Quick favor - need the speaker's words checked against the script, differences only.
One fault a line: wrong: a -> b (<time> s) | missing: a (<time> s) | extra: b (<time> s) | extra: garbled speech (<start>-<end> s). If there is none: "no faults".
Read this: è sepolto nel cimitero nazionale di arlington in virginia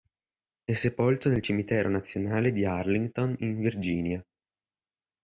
no faults